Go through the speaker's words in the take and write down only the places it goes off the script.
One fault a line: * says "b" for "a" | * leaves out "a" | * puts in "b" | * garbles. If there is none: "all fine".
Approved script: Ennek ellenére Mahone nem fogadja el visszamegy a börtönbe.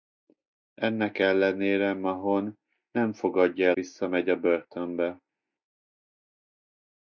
all fine